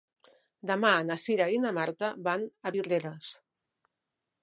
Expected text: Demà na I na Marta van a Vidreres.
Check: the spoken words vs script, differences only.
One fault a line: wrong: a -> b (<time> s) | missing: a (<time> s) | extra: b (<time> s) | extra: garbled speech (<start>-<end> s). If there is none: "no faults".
extra: Cira (1.2 s)